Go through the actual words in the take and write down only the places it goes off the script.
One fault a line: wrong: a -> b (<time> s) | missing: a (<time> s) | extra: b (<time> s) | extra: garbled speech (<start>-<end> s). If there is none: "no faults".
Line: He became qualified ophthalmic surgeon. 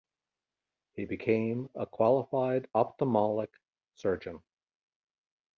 extra: a (1.8 s)